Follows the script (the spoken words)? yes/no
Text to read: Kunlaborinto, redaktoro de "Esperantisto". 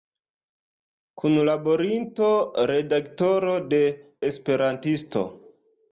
yes